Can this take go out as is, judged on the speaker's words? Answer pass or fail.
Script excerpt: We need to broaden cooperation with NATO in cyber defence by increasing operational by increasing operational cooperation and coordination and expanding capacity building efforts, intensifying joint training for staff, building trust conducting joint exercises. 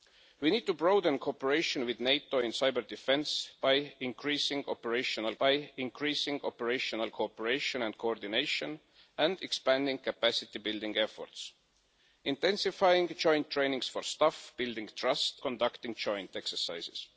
pass